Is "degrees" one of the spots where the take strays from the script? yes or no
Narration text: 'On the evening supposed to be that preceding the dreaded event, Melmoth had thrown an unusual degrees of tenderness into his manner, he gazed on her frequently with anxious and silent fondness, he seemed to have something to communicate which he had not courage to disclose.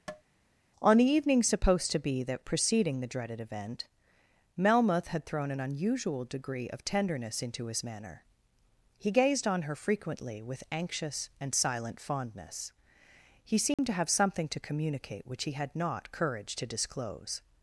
yes